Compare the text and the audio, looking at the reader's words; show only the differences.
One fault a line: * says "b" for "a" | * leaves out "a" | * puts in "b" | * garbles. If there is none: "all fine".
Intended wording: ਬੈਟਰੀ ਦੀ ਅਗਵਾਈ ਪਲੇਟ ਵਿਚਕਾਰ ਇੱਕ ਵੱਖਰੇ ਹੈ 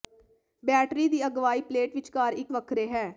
all fine